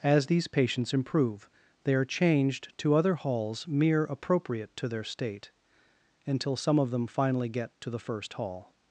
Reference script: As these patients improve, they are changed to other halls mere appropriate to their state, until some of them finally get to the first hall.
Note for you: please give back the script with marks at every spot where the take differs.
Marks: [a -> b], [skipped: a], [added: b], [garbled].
As these patients improve, they are changed to other halls mere appropriate to their state, until some of them finally get to the first hall.